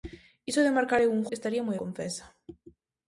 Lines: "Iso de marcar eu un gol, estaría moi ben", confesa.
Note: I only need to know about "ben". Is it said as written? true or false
false